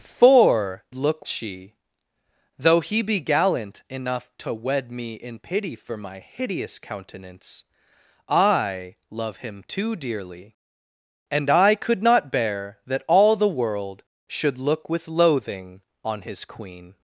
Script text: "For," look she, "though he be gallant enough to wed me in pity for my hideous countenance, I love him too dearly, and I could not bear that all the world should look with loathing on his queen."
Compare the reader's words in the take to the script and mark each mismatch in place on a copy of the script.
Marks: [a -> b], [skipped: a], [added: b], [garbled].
"For," look she, "though he be gallant enough to wed me in pity for my hideous countenance, I love him too dearly, and I could not bear that all the world should look with loathing on his queen."